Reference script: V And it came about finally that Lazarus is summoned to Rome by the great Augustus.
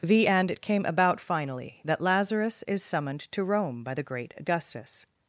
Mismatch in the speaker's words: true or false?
false